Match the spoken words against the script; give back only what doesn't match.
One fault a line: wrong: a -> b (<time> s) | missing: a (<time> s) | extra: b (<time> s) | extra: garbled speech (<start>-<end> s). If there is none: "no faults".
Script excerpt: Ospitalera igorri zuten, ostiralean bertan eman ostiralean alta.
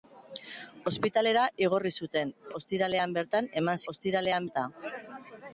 no faults